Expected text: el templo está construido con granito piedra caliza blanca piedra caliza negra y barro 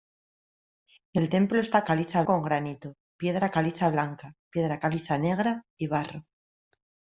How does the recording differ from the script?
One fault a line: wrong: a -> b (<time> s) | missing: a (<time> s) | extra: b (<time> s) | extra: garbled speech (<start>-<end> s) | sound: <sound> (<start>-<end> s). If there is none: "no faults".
wrong: construido -> caliza (1.8 s)